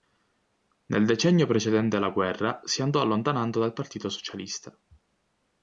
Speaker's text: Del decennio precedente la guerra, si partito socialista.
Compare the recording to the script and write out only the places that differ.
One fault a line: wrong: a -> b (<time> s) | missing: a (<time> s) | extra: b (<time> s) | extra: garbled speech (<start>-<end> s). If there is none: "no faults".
wrong: Del -> Nel (0.9 s)
extra: andò allontanando dal (2.8 s)